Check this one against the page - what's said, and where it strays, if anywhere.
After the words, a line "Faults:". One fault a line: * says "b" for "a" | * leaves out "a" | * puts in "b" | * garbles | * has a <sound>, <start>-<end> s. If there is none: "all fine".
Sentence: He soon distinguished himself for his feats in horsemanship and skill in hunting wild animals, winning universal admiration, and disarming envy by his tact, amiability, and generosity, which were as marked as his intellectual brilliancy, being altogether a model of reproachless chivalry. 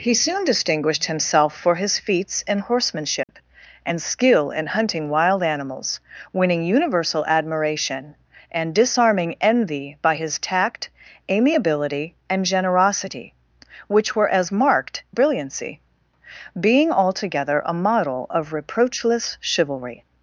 He soon distinguished himself for his feats in horsemanship and skill in hunting wild animals, winning universal admiration, and disarming envy by his tact, amiability, and generosity, which were as marked brilliancy, being altogether a model of reproachless chivalry.
Faults:
* has a dropout, 3.2-3.3 s
* leaves out "as his intellectual"